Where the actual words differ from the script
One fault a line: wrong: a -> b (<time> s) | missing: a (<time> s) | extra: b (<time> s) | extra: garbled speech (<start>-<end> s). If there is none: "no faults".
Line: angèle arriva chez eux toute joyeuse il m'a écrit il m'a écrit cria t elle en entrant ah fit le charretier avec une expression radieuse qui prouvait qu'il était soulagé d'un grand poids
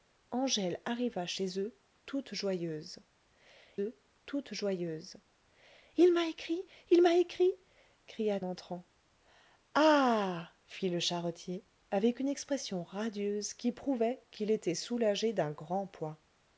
extra: eux toute joyeuse (3.8 s)
missing: t elle en (8.4 s)